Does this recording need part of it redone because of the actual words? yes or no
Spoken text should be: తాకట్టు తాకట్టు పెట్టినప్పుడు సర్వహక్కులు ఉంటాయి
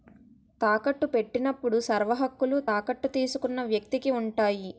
yes